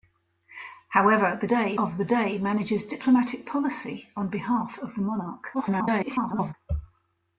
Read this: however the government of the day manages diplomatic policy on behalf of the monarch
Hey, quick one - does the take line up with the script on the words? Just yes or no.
no